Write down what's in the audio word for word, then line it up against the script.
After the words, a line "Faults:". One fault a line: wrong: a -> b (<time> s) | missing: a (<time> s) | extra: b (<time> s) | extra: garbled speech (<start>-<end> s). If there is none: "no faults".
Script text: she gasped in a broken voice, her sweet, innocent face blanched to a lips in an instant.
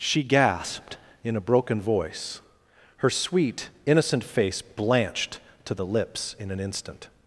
she gasped in a broken voice, her sweet, innocent face blanched to the lips in an instant.
Faults:
wrong: a -> the (5.7 s)